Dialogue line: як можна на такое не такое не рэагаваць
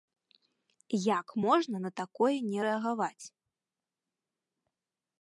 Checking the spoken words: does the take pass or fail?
fail